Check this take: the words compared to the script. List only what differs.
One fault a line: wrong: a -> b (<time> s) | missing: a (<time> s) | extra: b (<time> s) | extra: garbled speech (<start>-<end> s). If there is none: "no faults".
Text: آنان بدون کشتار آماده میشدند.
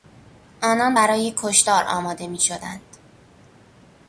wrong: بدون -> برای (0.9 s)